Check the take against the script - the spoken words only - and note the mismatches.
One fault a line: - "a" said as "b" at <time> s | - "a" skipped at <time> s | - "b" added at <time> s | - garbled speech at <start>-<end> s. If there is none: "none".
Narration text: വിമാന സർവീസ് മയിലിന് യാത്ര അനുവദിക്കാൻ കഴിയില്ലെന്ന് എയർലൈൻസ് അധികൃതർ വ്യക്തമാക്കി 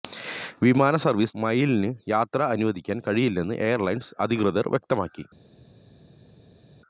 none